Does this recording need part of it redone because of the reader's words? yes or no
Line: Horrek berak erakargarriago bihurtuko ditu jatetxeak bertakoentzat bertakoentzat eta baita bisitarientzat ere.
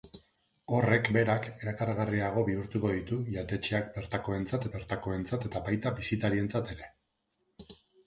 no